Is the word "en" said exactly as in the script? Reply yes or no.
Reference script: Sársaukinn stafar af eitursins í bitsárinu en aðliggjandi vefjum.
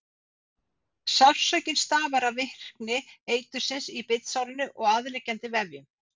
no